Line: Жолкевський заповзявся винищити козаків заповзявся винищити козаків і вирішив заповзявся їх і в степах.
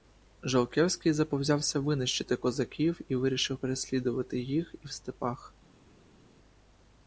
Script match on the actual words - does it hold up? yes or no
no